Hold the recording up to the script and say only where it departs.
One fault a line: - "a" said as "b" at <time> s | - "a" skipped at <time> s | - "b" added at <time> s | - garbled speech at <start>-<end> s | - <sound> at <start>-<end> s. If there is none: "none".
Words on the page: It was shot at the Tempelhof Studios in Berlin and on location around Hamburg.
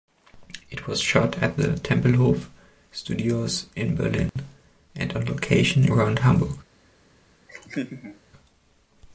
- dropout at 4.3-4.4 s
- laugh at 7.5-8.2 s